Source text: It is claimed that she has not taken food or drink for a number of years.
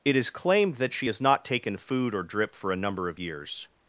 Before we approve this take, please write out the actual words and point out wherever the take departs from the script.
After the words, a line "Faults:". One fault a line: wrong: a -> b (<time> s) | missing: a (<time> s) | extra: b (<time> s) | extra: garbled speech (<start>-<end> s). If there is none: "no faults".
It is claimed that she has not taken food or drip for a number of years.
Faults:
wrong: drink -> drip (2.2 s)